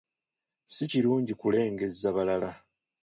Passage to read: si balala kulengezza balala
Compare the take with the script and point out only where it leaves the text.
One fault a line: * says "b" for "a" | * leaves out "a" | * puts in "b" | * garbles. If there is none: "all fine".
* says "kirungi" for "balala"